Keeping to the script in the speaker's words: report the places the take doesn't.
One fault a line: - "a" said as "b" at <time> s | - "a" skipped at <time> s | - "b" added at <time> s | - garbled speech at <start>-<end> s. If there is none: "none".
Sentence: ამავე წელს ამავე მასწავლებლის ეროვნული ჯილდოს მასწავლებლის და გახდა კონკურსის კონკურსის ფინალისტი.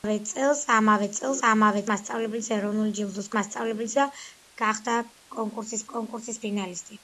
none